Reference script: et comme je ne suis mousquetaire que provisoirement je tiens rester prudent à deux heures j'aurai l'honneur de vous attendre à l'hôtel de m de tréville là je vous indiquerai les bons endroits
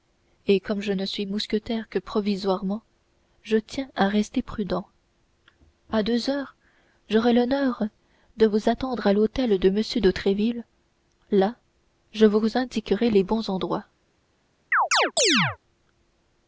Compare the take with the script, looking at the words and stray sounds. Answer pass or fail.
fail